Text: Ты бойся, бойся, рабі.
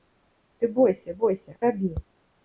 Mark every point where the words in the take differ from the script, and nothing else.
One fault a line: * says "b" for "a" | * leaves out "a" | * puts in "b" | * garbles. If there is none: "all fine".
all fine